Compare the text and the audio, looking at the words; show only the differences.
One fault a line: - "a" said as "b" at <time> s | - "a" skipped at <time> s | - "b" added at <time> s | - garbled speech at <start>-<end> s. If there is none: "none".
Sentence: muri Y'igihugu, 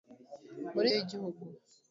none